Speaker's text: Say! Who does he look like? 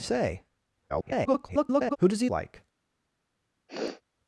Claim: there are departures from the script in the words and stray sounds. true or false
true